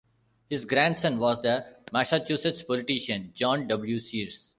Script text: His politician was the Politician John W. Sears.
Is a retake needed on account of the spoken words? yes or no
yes